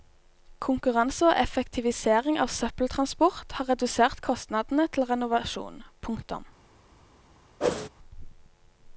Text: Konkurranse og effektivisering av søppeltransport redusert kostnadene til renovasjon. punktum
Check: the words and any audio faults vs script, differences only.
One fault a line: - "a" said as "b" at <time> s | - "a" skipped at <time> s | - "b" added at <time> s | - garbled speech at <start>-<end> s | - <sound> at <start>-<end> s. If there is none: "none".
- "har" added at 3.6 s
- whoosh at 7.6-7.9 s